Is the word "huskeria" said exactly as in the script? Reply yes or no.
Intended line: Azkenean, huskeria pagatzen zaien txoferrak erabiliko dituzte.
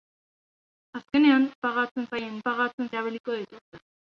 no